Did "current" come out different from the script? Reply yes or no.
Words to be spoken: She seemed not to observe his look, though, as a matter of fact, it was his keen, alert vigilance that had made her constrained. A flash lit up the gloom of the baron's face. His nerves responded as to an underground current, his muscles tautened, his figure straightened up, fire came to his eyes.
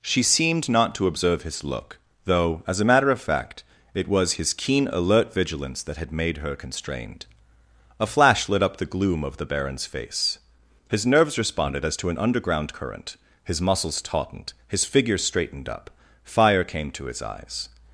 no